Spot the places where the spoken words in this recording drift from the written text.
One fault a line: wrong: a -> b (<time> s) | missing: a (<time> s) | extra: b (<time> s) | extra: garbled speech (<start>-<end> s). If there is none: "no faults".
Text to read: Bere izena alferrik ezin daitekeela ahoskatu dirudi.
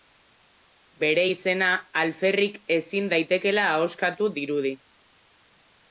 no faults